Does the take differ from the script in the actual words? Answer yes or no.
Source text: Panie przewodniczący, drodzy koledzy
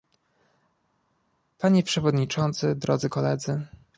no